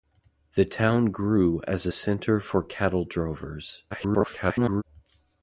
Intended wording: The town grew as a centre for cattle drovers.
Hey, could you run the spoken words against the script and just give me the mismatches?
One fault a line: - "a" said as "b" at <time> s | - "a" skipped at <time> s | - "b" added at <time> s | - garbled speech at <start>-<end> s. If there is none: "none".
- garbled speech at 3.9-4.8 s